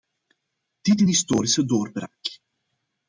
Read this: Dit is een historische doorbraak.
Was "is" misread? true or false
true